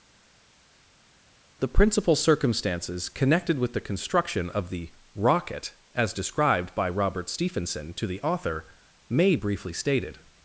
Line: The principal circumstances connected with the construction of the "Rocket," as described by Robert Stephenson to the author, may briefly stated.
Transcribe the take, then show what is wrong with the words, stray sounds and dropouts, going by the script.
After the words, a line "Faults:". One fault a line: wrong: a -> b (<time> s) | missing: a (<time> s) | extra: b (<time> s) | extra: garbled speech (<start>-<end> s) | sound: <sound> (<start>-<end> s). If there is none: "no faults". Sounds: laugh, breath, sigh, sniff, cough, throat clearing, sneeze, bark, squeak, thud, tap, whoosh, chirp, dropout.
The principal circumstances connected with the construction of the "Rocket," as described by Robert Stephenson to the author, may briefly stated.
Faults:
no faults